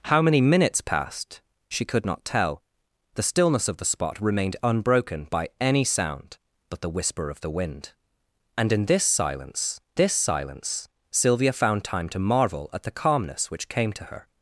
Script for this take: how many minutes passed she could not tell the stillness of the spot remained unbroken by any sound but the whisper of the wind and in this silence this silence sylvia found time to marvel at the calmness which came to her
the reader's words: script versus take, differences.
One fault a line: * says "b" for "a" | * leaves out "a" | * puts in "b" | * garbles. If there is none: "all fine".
all fine